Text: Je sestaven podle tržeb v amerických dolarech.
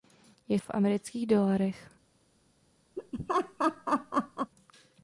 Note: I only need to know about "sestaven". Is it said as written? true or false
false